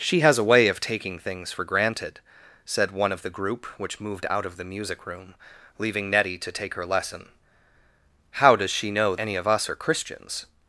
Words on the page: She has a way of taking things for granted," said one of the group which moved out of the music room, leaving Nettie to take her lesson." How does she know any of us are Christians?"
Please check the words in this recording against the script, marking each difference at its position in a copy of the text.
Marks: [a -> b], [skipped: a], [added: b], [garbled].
She has a way of taking things for granted," said one of the group which moved out of the music room, leaving Nettie to take her lesson." How does she know any of us are Christians?"